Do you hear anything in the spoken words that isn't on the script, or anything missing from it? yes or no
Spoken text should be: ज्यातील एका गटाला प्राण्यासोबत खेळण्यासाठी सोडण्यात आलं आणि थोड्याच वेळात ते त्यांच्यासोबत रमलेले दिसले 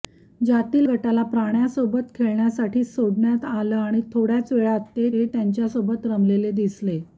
yes